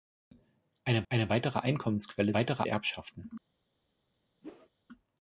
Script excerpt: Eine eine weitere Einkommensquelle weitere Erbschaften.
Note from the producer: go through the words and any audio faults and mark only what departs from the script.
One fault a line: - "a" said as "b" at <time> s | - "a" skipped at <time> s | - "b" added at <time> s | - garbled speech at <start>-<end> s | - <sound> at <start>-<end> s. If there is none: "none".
- whoosh at 4.4-4.7 s